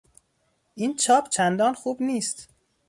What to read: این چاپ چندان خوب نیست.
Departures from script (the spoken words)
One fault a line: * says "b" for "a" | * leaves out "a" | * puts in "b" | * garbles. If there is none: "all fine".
all fine